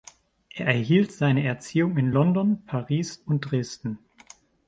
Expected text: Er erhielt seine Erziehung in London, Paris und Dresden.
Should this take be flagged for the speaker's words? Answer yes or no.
no